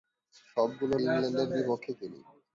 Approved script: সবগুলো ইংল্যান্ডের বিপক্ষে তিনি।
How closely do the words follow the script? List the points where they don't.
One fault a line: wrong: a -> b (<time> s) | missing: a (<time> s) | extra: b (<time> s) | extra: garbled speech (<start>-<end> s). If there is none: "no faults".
no faults